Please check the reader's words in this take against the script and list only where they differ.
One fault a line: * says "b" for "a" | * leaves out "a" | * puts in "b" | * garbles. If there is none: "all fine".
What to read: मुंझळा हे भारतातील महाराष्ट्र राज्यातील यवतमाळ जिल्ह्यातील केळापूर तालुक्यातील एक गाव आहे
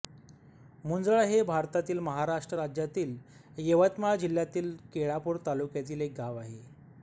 all fine